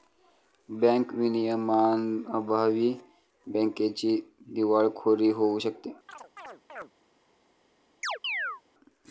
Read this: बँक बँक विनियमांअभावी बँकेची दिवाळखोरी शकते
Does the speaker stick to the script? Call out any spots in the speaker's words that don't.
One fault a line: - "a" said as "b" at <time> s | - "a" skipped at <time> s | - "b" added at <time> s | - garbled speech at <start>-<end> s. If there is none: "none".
- "बँक" skipped at 1.1 s
- "होऊ" added at 5.3 s